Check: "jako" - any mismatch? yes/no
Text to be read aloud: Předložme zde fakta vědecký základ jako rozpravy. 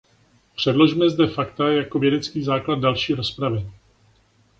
yes